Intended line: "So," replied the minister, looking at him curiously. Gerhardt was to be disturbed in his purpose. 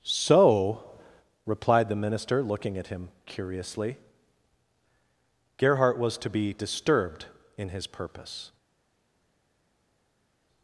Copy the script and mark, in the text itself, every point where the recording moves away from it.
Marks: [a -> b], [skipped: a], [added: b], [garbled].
"So," replied the minister, looking at him curiously. Gerhardt was to be disturbed in his purpose.